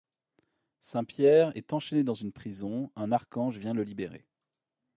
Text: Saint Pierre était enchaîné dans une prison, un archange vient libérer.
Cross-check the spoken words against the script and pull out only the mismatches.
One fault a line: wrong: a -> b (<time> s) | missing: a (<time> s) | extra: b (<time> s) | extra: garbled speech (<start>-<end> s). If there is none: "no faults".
wrong: était -> est (1.6 s)
extra: le (3.7 s)